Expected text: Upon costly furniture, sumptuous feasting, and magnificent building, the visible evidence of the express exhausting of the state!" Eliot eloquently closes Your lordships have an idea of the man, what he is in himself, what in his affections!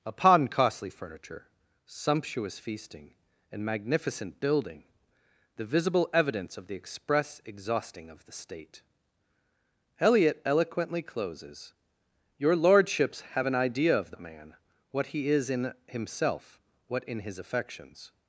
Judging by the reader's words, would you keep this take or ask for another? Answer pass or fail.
pass